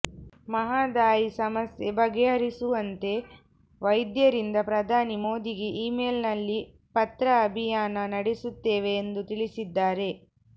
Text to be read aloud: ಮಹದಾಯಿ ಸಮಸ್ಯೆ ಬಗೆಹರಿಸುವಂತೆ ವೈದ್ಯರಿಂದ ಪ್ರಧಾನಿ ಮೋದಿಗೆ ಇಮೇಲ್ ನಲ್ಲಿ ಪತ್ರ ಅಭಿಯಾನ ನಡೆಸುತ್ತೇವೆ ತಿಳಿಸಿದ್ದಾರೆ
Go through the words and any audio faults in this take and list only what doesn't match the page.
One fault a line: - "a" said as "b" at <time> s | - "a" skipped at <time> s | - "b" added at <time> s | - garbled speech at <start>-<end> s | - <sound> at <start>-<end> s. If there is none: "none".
- "ಎಂದು" added at 9.0 s